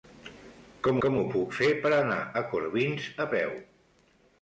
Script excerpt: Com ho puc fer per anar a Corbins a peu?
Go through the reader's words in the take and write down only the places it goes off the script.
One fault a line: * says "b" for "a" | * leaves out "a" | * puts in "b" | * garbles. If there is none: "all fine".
* puts in "com"